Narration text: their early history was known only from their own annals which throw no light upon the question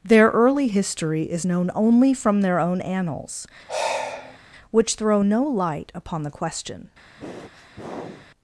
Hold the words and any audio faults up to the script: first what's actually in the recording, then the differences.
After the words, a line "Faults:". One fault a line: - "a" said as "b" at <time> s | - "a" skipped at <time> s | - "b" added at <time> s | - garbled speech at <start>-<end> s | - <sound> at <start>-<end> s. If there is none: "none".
their early history is known only from their own annals which throw no light upon the question
Faults:
- "was" said as "is" at 1.2 s
- sigh at 3.7-4.4 s
- sniff at 7.0-8.3 s